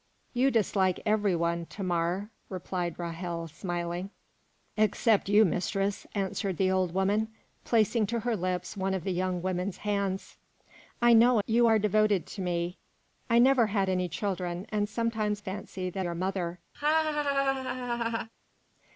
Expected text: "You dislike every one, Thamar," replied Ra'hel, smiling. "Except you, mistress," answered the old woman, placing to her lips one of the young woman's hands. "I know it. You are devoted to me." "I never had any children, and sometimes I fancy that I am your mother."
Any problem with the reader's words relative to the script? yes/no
yes